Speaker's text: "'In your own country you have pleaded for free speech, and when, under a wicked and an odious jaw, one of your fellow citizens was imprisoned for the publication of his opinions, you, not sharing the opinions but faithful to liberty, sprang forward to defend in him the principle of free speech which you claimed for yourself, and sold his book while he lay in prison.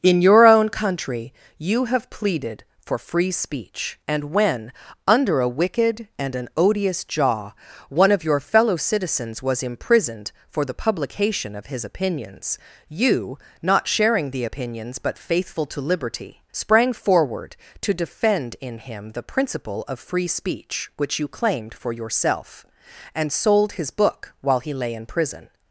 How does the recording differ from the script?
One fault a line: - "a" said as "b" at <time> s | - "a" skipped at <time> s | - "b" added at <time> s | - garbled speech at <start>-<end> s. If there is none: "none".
none